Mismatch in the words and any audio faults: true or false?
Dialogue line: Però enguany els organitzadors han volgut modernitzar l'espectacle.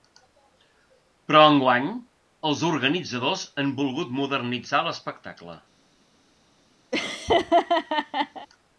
true